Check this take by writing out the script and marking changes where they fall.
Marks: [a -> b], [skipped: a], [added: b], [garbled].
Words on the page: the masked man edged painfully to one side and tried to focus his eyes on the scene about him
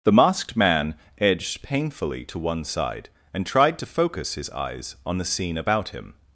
the masked man edged painfully to one side and tried to focus his eyes on the scene about him